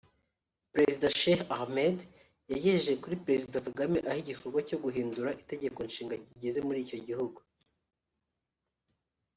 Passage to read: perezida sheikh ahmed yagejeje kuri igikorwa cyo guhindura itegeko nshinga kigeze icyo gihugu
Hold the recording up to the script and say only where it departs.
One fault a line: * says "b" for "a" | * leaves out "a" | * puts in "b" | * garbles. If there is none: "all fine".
* puts in "perezida kagame aho"
* puts in "muri"